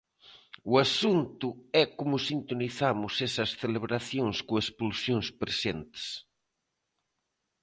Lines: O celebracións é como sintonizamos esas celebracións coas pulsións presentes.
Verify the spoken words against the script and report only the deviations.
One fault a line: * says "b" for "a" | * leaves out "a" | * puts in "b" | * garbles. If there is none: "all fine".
* says "asunto" for "celebracións"